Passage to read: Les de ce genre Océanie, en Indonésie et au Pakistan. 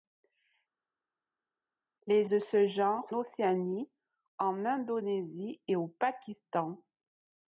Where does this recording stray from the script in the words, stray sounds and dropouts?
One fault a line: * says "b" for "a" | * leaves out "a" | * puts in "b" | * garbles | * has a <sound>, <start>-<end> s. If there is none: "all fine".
all fine